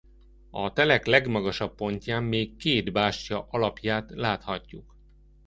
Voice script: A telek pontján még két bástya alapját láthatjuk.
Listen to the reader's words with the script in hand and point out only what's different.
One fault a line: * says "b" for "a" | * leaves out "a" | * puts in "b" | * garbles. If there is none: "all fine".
* puts in "legmagasabb"